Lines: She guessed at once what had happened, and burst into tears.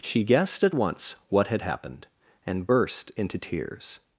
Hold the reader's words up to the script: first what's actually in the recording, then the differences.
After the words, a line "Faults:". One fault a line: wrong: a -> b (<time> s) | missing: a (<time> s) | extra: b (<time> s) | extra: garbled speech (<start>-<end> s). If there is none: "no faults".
She guessed at once what had happened, and burst into tears.
Faults:
no faults